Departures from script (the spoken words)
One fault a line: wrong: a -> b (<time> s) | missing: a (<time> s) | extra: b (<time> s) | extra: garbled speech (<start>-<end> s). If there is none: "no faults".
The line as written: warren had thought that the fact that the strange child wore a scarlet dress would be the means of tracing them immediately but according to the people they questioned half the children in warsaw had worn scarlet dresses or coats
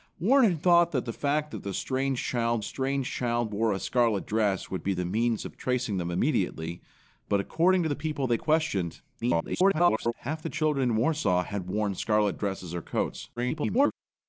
extra: strange child (2.6 s)
extra: garbled speech (9.2-10.1 s)
extra: garbled speech (13.4-13.9 s)